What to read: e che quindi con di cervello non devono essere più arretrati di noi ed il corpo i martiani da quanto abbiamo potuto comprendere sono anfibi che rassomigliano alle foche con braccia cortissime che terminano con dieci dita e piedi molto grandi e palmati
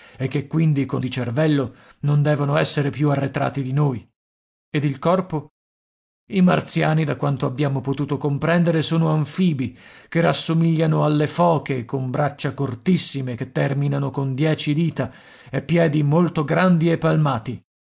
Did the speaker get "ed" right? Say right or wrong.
right